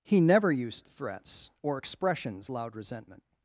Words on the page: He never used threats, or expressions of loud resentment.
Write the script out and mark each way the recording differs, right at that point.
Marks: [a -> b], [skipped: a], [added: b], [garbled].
He never used threats, or expressions [skipped: of] loud resentment.